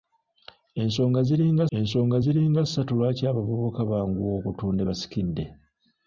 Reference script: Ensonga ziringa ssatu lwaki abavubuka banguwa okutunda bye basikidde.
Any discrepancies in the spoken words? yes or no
yes